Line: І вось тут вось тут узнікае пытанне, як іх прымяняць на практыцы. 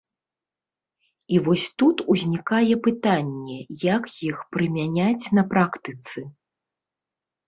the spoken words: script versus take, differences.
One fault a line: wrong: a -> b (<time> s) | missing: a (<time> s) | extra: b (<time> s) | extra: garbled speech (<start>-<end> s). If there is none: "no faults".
missing: вось тут (2.0 s)